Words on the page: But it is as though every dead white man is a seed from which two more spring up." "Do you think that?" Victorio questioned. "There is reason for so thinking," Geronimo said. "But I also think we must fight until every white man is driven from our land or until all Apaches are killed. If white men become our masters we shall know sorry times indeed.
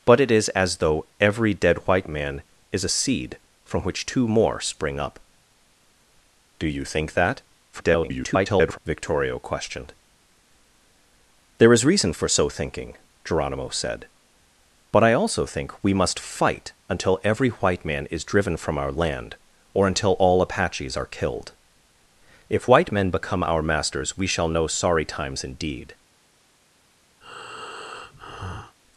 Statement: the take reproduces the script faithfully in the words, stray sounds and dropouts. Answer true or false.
false